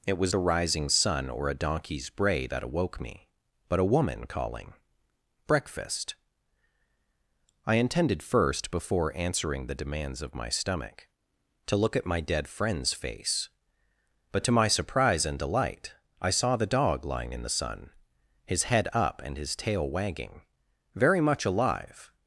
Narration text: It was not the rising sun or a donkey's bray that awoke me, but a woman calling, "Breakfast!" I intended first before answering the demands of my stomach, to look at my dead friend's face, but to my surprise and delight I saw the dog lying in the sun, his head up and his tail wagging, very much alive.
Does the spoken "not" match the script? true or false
false